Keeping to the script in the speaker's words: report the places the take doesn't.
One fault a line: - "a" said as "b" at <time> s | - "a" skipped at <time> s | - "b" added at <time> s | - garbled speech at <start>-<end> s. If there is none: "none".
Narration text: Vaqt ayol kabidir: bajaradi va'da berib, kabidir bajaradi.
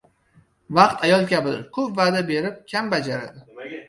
- "bajaradi" said as "ko‘p" at 1.8 s
- "kabidir" said as "kam" at 2.7 s